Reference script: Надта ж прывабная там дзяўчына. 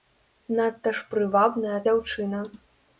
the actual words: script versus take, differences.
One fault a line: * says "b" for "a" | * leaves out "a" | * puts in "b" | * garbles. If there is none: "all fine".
* leaves out "там"